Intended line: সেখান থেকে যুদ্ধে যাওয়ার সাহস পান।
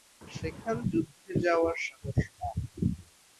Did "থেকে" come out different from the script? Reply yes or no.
yes